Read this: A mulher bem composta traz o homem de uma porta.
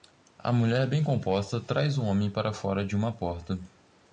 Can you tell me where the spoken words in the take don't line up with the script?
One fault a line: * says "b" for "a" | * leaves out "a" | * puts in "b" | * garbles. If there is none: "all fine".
* puts in "para fora"